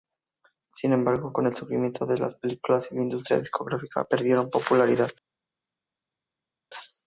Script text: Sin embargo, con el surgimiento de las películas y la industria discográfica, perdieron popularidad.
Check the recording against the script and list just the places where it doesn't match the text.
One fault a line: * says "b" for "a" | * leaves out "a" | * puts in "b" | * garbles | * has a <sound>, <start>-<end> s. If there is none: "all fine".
all fine